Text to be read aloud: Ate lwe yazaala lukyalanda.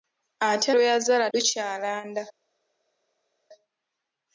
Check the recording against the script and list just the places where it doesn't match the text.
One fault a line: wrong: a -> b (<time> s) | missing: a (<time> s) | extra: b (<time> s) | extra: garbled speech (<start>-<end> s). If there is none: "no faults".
no faults